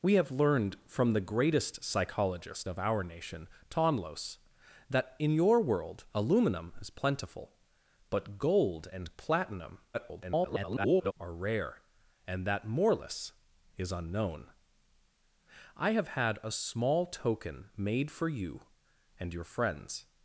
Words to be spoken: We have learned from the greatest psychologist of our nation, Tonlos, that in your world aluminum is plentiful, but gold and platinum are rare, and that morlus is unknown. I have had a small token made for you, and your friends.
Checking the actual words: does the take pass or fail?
fail